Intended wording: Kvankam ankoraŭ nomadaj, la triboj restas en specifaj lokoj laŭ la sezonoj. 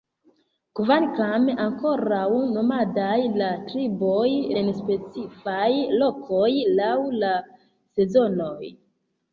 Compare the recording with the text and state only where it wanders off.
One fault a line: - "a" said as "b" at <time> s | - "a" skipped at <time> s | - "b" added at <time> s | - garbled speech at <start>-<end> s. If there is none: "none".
- "restas" skipped at 4.2 s